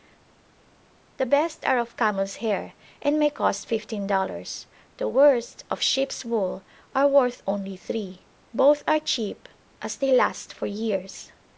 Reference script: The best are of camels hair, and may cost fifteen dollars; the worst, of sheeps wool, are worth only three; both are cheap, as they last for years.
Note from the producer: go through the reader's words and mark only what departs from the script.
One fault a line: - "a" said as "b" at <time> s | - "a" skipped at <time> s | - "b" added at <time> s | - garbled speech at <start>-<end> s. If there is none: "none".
none